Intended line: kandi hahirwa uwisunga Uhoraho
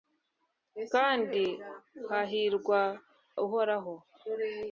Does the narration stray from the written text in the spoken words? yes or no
yes